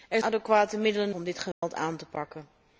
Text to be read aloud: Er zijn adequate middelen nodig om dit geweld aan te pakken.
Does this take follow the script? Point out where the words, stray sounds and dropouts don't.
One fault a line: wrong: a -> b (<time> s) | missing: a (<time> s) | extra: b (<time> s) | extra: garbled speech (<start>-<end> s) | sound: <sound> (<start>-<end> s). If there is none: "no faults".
missing: zijn (0.2 s)
missing: nodig (1.1 s)
sound: dropout (1.5-1.6 s)